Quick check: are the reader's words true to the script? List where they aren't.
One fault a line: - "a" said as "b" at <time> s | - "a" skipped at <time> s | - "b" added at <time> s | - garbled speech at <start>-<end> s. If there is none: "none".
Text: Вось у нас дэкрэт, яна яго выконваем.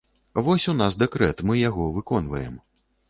- "яна" said as "мы" at 1.5 s